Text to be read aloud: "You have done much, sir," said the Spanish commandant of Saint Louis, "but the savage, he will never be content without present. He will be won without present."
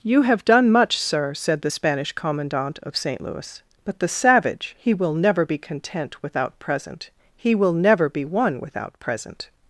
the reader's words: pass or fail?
fail